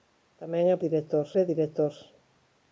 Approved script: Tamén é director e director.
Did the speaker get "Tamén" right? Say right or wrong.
right